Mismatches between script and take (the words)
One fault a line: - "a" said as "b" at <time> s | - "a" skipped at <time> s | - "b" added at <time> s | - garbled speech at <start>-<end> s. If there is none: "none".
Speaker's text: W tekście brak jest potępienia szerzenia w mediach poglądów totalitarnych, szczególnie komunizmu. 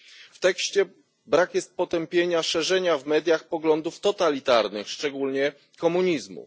none